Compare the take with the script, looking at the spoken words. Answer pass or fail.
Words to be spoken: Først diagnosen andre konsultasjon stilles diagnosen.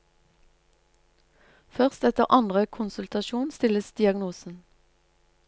fail